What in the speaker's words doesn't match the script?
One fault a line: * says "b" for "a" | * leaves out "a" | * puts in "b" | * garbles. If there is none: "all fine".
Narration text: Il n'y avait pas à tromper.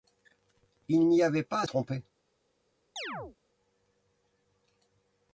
all fine